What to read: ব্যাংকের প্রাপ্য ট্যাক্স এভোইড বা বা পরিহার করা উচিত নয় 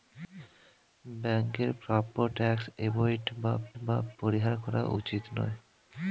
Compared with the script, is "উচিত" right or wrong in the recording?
right